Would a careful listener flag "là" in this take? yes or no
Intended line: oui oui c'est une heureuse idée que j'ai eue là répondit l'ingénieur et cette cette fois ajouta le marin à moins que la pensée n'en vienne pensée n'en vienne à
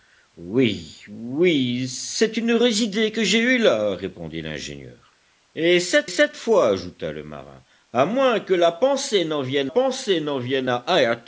no